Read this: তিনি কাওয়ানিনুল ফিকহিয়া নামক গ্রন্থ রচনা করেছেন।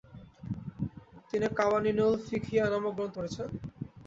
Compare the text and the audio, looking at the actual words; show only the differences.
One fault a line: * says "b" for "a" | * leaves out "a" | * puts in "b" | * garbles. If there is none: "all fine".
* leaves out "রচনা"